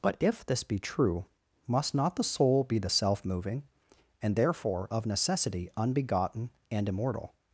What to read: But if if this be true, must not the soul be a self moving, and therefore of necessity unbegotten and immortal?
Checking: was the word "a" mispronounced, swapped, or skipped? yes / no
yes